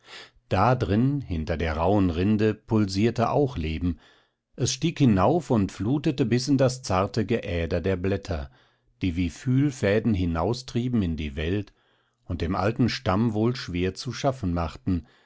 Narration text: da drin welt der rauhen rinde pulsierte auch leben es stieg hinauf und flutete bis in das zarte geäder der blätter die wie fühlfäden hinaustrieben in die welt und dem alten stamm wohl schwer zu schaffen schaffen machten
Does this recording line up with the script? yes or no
no